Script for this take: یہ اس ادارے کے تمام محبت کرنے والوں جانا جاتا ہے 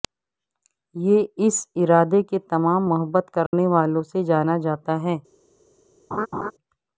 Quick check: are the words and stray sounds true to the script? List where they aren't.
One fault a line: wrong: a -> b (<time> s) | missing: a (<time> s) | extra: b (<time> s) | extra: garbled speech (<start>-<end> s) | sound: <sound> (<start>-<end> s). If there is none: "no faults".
sound: dropout (3.5-3.5 s)
extra: سے (4.1 s)
sound: laugh (6.1-6.5 s)